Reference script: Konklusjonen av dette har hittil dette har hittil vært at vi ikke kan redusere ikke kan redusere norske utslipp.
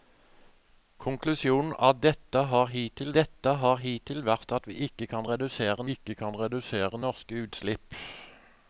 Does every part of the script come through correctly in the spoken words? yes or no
yes